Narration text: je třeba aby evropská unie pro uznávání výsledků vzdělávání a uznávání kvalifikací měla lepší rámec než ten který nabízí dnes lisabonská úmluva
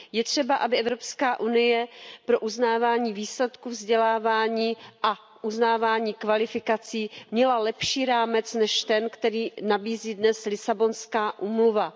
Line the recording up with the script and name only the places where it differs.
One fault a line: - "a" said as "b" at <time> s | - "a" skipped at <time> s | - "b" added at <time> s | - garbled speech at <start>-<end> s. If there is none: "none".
none